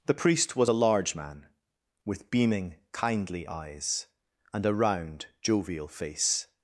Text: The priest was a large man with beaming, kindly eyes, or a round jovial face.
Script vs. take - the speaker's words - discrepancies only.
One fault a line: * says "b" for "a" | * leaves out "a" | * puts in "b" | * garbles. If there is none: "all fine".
* says "and" for "or"